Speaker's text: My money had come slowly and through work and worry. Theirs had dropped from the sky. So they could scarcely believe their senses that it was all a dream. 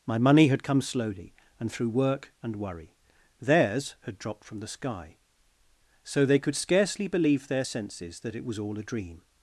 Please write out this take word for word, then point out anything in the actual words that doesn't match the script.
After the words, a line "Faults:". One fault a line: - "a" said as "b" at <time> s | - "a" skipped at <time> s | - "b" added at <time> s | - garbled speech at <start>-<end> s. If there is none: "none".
My money had come slowly and through work and worry. Theirs had dropped from the sky. So they could scarcely believe their senses that it was all a dream.
Faults:
none